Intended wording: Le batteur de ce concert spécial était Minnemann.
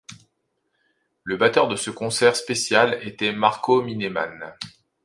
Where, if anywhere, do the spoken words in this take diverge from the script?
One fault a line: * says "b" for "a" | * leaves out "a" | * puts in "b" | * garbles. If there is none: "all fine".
* puts in "Marco"